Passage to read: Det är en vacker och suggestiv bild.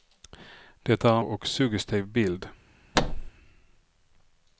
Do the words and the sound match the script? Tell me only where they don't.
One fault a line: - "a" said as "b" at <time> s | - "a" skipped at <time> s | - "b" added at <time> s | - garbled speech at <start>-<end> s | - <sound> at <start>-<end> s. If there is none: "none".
- "en vacker" skipped at 1.2 s
- thud at 2.9-3.3 s